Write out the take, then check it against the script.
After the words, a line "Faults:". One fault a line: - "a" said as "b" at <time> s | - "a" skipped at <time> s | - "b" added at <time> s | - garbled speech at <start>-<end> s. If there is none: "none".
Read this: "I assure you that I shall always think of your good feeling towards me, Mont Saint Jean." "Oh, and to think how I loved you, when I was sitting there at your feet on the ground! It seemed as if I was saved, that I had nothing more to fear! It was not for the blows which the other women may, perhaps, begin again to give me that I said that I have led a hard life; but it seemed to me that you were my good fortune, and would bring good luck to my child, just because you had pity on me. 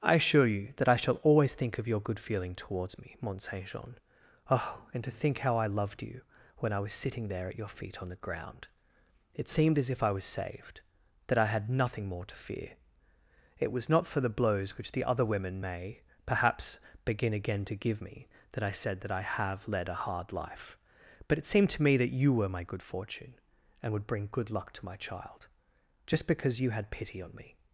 "I assure you that I shall always think of your good feeling towards me, Mont Saint Jean." "Oh, and to think how I loved you, when I was sitting there at your feet on the ground! It seemed as if I was saved, that I had nothing more to fear! It was not for the blows which the other women may, perhaps, begin again to give me that I said that I have led a hard life; but it seemed to me that you were my good fortune, and would bring good luck to my child, just because you had pity on me.
Faults:
none